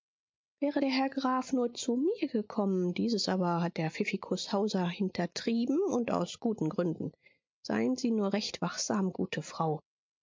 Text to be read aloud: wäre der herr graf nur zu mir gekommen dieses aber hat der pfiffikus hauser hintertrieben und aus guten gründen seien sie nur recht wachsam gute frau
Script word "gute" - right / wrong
right